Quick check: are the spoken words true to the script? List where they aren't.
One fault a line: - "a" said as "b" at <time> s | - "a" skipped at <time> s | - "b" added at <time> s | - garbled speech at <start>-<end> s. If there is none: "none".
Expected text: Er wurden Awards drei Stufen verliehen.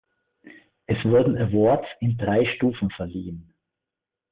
- "Er" said as "Es" at 0.9 s
- "in" added at 2.0 s